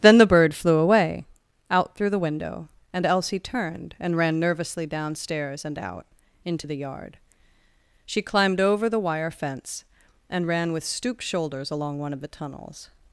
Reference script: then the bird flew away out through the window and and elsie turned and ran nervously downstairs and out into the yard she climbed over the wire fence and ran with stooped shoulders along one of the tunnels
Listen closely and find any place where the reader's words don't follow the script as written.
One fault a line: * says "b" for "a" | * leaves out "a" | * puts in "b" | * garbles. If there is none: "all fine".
* leaves out "and"